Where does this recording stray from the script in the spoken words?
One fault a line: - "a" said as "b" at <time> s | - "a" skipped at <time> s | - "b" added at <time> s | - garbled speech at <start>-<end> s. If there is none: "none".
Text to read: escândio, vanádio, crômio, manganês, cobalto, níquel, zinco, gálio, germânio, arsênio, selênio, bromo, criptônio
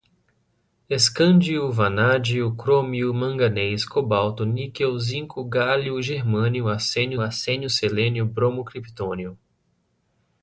- "arsênio" added at 7.2 s